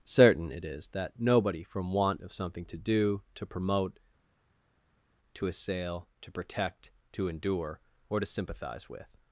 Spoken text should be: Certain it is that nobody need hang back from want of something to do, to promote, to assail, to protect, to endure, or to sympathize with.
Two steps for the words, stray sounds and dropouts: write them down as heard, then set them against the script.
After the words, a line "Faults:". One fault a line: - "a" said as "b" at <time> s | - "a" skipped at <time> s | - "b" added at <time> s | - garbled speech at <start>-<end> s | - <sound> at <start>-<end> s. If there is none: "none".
Certain it is that nobody from want of something to do, to promote, to assail, to protect, to endure, or to sympathize with.
Faults:
- "need hang back" skipped at 1.6 s